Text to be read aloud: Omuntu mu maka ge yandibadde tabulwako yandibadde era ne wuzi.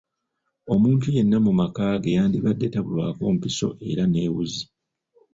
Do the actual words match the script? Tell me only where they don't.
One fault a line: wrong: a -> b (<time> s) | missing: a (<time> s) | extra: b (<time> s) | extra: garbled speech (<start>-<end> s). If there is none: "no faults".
extra: yenna (1.1 s)
wrong: yandibadde -> mpiso (3.4 s)